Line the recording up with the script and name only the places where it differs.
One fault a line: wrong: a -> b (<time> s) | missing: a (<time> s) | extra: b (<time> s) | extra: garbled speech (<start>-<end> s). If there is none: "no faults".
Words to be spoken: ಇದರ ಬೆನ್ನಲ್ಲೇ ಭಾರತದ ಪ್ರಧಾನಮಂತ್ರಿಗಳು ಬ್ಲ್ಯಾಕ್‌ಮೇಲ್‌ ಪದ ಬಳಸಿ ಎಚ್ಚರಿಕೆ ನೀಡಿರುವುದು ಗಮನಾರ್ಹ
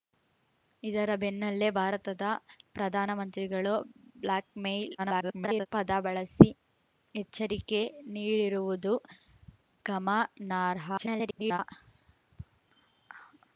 extra: garbled speech (5.0-5.7 s)
extra: garbled speech (11.0-11.6 s)